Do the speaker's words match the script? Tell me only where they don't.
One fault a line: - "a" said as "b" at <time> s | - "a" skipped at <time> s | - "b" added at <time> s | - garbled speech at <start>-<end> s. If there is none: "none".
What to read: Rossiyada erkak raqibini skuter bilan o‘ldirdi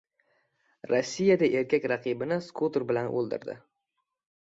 none